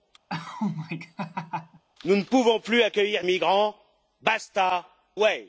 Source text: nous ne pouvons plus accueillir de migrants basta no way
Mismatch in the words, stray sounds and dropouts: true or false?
true